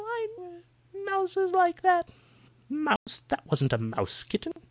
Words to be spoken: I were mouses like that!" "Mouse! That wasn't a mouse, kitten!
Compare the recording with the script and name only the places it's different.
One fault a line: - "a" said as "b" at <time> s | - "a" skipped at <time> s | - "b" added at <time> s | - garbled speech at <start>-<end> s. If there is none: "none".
none